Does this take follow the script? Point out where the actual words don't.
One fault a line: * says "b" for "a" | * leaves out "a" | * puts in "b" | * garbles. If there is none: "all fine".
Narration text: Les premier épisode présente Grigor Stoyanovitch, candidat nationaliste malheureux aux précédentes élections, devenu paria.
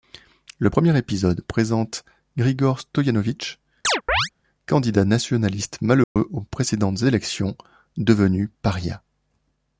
* says "Le" for "Les"